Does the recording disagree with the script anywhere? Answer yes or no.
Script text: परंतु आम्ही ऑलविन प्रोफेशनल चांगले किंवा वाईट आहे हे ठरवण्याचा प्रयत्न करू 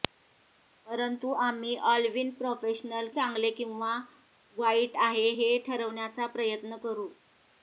no